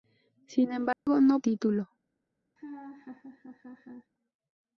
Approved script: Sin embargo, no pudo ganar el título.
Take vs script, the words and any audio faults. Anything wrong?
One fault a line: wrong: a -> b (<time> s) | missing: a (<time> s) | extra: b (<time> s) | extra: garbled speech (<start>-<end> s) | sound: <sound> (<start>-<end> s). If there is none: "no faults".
sound: dropout (0.9-1.1 s)
missing: pudo ganar el (1.4 s)
sound: laugh (2.6-4.1 s)